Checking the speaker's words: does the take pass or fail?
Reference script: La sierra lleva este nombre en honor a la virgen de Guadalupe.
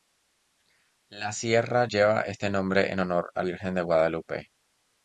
fail